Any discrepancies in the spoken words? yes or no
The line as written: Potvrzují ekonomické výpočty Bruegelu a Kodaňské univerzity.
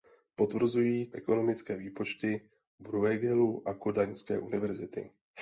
no